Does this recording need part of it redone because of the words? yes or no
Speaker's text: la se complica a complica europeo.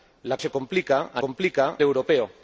no